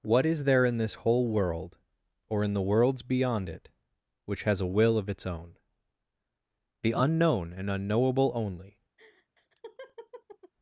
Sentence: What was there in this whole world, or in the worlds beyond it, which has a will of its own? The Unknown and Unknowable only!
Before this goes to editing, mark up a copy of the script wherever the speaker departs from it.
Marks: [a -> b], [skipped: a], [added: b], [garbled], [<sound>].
What [was -> is] there in this whole world, or in the worlds beyond it, which has a will of its own? The Unknown and Unknowable only! [laugh]